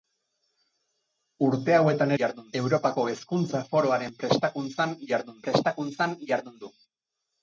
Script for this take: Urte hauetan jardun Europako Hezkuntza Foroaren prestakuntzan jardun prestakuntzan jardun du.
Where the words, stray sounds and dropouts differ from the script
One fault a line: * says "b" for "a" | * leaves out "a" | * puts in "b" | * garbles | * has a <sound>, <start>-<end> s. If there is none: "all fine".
all fine